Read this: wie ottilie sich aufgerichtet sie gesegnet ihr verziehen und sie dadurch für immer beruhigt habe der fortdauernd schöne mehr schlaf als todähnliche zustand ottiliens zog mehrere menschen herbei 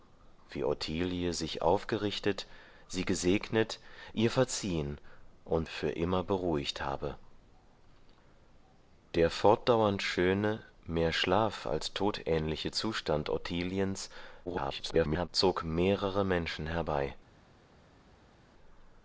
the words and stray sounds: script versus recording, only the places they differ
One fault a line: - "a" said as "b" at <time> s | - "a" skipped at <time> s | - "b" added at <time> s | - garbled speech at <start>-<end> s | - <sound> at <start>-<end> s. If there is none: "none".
- "sie dadurch" skipped at 5.7 s
- garbled speech at 14.5-15.3 s